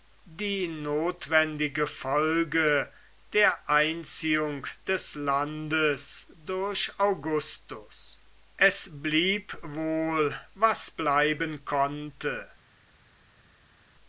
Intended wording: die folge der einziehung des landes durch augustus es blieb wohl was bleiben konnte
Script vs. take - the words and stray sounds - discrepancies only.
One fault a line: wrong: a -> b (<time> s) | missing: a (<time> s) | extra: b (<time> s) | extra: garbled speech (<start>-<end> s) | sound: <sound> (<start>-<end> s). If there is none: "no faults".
extra: notwendige (0.7 s)